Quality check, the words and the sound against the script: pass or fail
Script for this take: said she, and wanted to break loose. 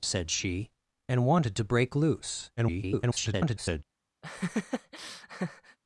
fail